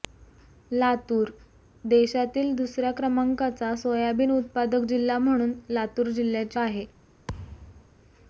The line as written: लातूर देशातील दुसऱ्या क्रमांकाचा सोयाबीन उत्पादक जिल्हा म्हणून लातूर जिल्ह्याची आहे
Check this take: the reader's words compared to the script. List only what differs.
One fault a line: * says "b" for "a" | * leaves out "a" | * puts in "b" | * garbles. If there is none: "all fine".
all fine